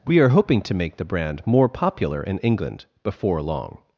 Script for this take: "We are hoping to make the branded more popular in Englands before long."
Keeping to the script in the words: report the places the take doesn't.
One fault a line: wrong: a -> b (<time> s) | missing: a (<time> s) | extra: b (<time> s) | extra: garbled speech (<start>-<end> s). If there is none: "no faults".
wrong: branded -> brand (1.1 s)
wrong: Englands -> England (2.4 s)